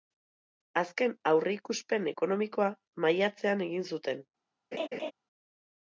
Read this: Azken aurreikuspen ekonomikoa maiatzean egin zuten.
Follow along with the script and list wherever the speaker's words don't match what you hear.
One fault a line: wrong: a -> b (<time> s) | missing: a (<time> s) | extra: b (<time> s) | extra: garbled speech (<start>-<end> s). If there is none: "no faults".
no faults